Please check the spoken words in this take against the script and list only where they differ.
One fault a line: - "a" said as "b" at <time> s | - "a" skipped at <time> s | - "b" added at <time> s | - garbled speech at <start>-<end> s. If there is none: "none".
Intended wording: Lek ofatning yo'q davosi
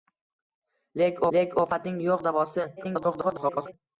- "lek" added at 1.4 s
- garbled speech at 2.8-3.7 s